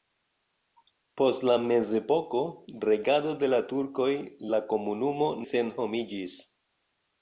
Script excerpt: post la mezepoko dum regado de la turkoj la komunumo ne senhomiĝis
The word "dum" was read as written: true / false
false